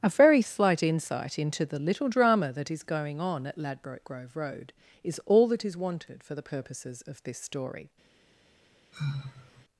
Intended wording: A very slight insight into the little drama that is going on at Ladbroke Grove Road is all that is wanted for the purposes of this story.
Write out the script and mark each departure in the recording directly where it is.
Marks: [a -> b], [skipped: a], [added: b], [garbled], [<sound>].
A very slight insight into the little drama that is going on at Ladbroke Grove Road is all that is wanted for the purposes of this story. [sigh]